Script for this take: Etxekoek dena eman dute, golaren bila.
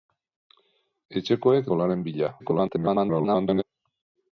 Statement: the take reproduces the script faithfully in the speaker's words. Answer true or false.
false